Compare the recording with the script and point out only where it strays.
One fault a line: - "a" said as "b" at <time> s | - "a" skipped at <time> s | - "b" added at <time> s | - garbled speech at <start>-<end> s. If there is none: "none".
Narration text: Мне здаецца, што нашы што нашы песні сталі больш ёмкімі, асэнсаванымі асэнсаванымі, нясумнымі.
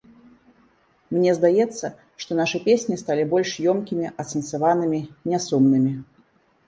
- "што нашы" skipped at 2.6 s
- "асэнсаванымі" skipped at 5.0 s